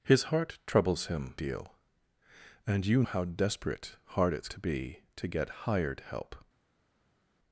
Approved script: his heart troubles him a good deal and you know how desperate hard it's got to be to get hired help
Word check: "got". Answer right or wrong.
wrong